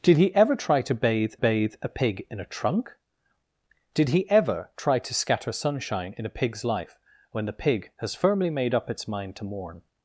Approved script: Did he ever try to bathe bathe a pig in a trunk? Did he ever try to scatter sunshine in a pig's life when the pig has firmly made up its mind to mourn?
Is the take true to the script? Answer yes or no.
yes